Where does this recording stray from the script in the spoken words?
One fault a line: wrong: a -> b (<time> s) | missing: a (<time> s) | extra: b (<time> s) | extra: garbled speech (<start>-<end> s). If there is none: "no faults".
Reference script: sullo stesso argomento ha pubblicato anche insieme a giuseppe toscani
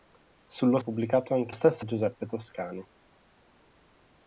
missing: stesso argomento (0.8 s)
wrong: insieme -> stesso (1.5 s)